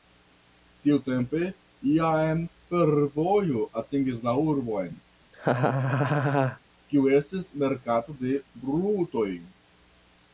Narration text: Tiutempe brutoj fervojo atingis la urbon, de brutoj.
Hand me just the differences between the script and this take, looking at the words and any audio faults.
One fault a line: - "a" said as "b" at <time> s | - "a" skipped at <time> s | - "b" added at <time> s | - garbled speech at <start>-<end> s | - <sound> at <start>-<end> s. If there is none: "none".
- "brutoj" said as "jam" at 2.0 s
- laugh at 5.3-6.6 s
- "kiu estis merkato" added at 6.9 s